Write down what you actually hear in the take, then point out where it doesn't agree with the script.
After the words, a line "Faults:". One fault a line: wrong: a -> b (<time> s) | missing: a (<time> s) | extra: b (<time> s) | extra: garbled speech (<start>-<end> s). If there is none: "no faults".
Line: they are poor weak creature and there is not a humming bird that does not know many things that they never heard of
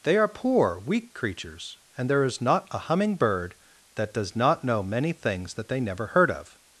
they are poor weak creatures and there is not a humming bird that does not know many things that they never heard of
Faults:
wrong: creature -> creatures (1.1 s)